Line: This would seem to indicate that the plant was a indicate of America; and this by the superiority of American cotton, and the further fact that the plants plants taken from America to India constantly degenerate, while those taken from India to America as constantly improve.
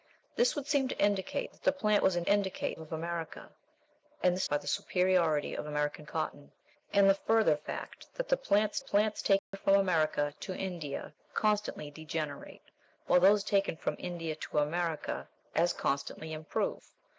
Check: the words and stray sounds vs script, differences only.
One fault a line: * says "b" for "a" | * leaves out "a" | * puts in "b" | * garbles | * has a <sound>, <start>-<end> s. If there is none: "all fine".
* has a dropout, 9.4-9.5 s